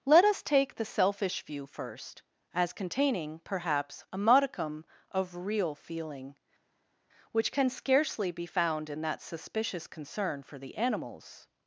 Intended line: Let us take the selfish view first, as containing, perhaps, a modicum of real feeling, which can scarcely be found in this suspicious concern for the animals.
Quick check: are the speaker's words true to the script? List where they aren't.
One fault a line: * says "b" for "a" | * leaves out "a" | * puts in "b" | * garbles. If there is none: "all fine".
* says "that" for "this"